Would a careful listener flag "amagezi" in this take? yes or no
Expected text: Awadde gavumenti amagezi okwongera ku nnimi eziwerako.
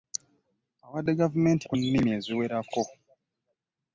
yes